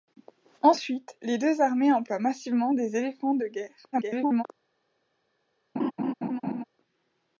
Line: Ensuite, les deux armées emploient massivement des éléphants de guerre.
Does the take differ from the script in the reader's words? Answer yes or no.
yes